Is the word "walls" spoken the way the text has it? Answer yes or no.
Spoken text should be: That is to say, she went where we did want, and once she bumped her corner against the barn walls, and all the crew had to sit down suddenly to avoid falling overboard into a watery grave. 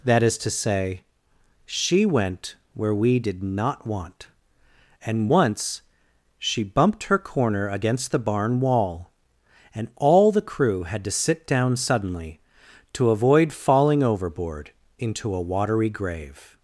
no